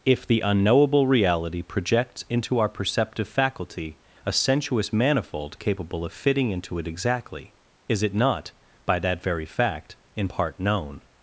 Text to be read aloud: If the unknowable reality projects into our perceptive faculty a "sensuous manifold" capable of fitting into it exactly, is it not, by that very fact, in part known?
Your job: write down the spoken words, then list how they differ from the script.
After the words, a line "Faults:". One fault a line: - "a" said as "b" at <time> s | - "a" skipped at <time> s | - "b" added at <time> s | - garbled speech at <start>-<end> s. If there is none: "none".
If the unknowable reality projects into our perceptive faculty a "sensuous manifold" capable of fitting into it exactly, is it not, by that very fact, in part known?
Faults:
none